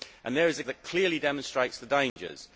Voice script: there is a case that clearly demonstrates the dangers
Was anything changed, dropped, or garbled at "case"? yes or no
yes